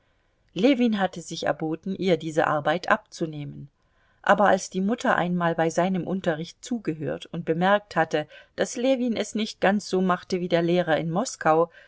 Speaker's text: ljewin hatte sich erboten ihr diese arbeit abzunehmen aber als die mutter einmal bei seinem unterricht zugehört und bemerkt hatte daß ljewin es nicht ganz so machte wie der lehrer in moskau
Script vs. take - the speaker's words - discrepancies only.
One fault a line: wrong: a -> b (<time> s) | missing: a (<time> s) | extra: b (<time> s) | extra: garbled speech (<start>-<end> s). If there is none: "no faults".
no faults